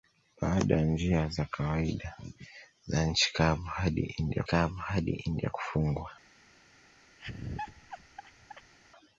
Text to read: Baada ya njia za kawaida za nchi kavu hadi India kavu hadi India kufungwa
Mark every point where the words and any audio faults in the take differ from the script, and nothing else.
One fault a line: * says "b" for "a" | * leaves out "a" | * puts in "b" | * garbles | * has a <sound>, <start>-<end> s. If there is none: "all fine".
* has a laugh, 7.2-8.7 s